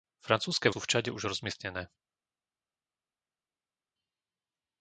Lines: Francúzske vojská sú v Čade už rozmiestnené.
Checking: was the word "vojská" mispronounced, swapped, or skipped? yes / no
yes